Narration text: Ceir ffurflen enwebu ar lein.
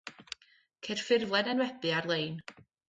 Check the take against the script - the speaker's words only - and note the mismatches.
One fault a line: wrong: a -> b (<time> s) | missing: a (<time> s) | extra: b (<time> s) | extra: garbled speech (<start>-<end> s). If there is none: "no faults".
no faults